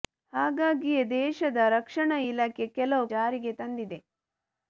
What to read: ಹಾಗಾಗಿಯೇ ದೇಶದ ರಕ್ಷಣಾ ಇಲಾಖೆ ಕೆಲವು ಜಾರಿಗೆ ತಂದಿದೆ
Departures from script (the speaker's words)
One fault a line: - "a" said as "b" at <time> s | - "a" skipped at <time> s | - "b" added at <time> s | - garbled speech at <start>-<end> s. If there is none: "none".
none